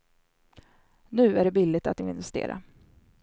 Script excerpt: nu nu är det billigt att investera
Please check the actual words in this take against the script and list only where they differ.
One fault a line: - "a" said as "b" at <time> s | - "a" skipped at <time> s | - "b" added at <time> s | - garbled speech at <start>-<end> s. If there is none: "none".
- "nu" skipped at 1.4 s